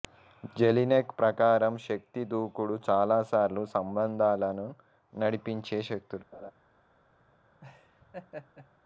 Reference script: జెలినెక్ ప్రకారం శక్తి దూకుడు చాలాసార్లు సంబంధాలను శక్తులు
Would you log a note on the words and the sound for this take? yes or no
yes